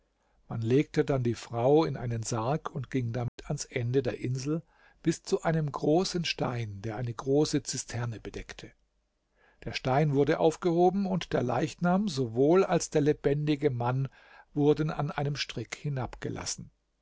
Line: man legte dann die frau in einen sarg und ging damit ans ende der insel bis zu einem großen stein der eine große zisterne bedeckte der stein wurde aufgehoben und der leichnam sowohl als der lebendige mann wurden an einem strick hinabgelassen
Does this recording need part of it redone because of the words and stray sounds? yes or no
yes